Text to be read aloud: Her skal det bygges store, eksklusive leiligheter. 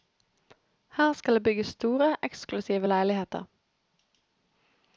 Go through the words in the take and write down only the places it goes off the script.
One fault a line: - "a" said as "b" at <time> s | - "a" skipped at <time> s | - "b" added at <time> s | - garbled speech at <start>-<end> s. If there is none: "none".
none